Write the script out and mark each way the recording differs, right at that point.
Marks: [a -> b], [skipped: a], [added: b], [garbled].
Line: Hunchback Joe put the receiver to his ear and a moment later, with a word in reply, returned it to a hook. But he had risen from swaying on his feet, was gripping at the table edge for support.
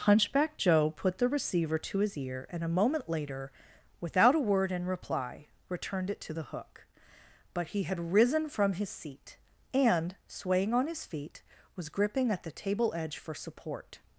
Hunchback Joe put the receiver to his ear and a moment later, [with -> without] a word in reply, returned it to [a -> the] hook. But he had risen from [added: his seat and] swaying on his feet, was gripping at the table edge for support.